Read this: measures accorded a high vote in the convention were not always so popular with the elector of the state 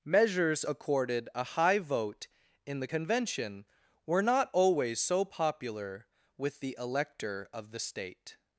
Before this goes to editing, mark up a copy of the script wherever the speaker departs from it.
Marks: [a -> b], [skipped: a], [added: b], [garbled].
measures accorded a high vote in the convention were not always so popular with the elector of the state